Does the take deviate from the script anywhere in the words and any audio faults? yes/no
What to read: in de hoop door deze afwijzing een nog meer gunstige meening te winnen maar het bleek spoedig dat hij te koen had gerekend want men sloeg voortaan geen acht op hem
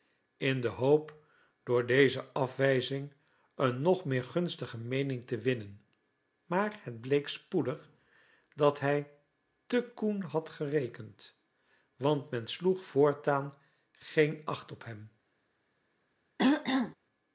yes